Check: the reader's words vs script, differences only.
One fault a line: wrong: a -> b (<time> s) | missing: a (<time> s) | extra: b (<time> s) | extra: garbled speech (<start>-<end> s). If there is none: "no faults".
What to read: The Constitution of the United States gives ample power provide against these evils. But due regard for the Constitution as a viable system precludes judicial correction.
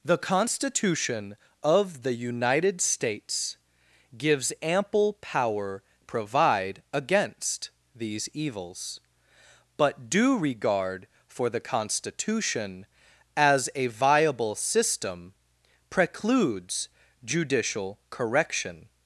no faults